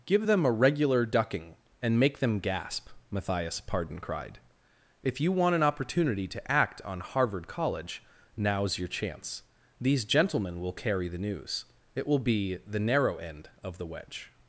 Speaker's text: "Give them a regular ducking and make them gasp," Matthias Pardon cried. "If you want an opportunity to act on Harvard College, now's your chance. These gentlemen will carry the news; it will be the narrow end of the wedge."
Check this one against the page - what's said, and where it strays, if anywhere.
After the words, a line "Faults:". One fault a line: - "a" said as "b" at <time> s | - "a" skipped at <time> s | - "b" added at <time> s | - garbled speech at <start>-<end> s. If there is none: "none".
"Give them a regular ducking and make them gasp," Matthias Pardon cried. "If you want an opportunity to act on Harvard College, now's your chance. These gentlemen will carry the news; it will be the narrow end of the wedge."
Faults:
none